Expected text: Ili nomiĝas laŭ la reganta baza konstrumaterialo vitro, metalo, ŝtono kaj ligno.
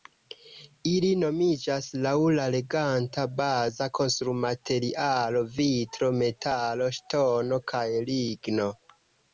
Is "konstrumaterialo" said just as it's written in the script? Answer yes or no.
yes